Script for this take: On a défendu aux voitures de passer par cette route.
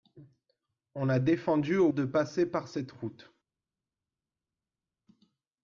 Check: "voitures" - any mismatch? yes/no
yes